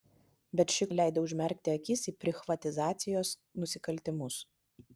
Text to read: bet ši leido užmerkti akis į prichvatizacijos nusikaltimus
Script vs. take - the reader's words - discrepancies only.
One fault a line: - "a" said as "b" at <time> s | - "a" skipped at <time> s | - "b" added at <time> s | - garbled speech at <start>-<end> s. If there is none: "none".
none